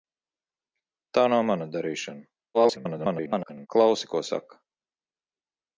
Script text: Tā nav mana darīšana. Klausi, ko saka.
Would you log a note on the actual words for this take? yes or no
yes